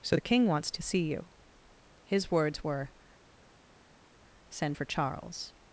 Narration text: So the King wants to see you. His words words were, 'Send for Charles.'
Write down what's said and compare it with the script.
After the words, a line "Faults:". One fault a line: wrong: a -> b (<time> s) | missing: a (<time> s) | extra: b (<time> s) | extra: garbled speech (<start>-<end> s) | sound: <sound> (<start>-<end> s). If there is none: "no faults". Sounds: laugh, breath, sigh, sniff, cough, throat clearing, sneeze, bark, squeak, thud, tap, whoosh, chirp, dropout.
So the King wants to see you. His words were, 'Send for Charles.'
Faults:
missing: words (2.6 s)